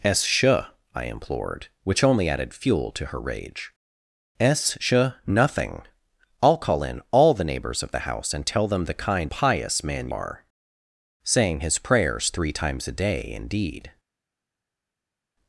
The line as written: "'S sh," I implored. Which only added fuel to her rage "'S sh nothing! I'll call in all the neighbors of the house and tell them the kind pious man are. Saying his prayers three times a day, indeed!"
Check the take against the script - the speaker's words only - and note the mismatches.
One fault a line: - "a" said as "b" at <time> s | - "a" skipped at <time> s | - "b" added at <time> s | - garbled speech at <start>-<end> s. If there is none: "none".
none